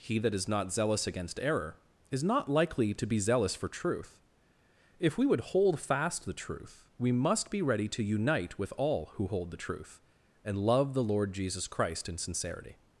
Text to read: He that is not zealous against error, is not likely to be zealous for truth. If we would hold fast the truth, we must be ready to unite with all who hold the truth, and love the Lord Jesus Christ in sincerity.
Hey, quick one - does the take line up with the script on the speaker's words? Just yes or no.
yes